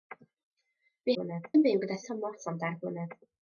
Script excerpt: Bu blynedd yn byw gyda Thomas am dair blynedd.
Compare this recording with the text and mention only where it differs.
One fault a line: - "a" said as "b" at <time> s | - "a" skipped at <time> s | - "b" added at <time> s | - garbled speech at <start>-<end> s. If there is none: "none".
none